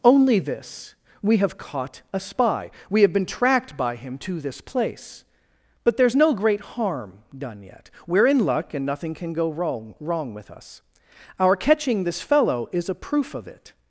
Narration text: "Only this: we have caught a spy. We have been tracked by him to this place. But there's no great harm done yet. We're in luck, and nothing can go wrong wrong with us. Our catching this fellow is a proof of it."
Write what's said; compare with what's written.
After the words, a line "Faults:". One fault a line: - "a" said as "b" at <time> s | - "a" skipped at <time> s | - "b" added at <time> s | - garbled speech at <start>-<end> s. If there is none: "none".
"Only this: we have caught a spy. We have been tracked by him to this place. But there's no great harm done yet. We're in luck, and nothing can go wrong wrong with us. Our catching this fellow is a proof of it."
Faults:
none